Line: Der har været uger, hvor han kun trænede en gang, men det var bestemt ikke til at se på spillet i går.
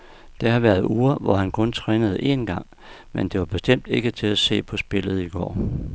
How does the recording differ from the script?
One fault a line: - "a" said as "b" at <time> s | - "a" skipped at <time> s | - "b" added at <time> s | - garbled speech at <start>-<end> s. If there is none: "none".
none